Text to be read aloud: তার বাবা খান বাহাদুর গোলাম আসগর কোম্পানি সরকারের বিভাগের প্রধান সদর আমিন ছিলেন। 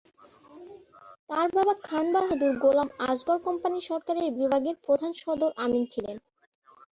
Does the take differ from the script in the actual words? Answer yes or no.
no